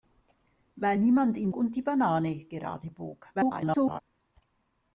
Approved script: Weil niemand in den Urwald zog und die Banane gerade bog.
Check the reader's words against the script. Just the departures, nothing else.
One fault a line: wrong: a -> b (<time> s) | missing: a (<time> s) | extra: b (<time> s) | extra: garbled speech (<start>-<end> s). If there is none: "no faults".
missing: den Urwald zog (1.5 s)
extra: garbled speech (3.3-4.0 s)